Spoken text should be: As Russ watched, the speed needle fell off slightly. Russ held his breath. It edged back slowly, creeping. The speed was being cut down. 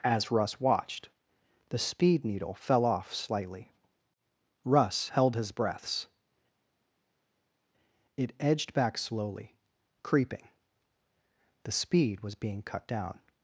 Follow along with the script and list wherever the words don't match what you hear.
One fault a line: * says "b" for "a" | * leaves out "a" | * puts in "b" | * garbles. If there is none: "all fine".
* says "breaths" for "breath"